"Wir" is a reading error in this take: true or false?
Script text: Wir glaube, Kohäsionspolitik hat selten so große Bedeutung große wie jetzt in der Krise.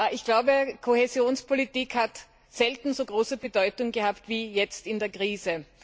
true